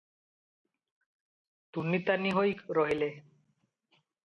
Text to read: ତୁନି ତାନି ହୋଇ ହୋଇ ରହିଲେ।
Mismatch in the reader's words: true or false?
true